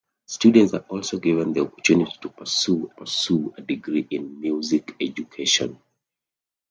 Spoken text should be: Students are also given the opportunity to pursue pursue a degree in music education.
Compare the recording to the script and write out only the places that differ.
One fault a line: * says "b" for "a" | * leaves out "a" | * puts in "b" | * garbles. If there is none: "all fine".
all fine